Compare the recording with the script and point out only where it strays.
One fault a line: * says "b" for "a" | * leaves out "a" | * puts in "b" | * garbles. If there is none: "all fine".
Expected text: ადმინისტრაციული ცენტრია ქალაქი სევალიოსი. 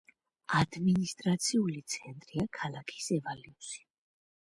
all fine